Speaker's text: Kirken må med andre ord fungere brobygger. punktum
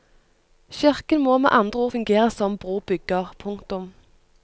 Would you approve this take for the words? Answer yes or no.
no